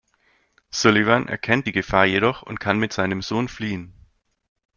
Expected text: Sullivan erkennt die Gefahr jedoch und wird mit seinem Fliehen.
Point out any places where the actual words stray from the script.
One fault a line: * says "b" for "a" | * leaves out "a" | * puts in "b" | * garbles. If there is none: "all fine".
* says "kann" for "wird"
* puts in "Sohn"